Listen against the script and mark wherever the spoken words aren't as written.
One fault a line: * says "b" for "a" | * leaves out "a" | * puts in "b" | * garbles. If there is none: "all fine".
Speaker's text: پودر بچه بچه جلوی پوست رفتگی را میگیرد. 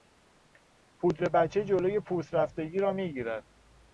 * leaves out "بچه"